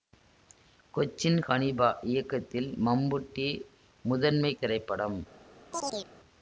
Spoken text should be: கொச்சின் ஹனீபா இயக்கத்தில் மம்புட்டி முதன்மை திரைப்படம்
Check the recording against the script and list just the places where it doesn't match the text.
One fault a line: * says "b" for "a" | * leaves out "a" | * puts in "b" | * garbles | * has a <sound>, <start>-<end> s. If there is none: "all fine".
* has a chirp, 5.7-6.1 s